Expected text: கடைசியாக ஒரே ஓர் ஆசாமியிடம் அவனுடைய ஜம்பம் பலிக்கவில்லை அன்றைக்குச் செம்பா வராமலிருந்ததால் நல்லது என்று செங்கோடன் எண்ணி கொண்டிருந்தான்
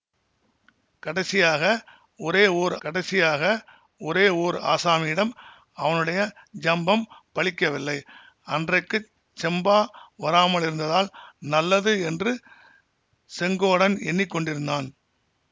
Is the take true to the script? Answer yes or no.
no